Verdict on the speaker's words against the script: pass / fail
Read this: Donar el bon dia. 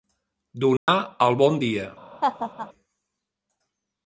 pass